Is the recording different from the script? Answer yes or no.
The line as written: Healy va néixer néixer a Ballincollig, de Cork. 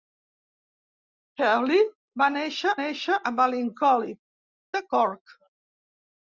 no